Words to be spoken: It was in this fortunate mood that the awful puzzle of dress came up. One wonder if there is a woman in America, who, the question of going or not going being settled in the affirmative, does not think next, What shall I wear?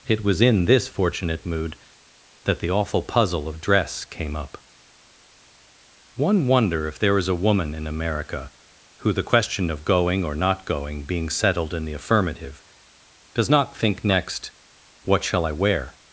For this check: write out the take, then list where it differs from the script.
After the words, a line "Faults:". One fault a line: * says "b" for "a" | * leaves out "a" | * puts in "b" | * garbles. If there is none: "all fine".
It was in this fortunate mood that the awful puzzle of dress came up. One wonder if there is a woman in America, who, the question of going or not going being settled in the affirmative, does not think next, What shall I wear?
Faults:
all fine